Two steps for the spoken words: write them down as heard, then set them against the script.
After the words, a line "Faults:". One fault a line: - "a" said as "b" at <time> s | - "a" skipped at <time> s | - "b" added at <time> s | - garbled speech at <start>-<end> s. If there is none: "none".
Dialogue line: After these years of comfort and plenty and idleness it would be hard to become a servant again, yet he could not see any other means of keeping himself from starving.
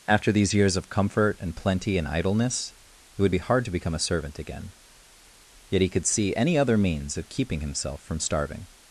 After these years of comfort and plenty and idleness it would be hard to become a servant again, yet he could see any other means of keeping himself from starving.
Faults:
- "not" skipped at 6.0 s